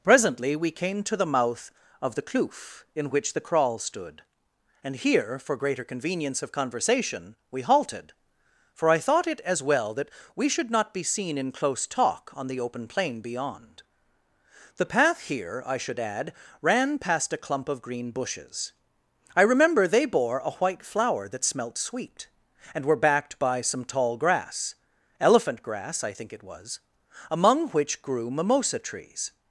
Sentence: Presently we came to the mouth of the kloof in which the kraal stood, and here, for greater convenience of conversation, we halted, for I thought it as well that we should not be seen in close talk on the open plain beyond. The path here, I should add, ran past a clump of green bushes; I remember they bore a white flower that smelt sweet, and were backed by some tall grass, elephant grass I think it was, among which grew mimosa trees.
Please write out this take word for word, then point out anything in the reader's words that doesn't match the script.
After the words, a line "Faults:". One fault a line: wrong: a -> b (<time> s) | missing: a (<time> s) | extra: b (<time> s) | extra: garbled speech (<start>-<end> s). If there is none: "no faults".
Presently we came to the mouth of the kloof in which the kraal stood, and here, for greater convenience of conversation, we halted, for I thought it as well that we should not be seen in close talk on the open plain beyond. The path here, I should add, ran past a clump of green bushes; I remember they bore a white flower that smelt sweet, and were backed by some tall grass, elephant grass I think it was, among which grew mimosa trees.
Faults:
no faults